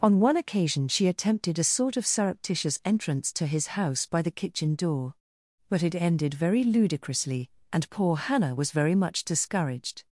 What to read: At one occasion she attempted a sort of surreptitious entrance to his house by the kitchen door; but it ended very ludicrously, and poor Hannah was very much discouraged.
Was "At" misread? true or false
true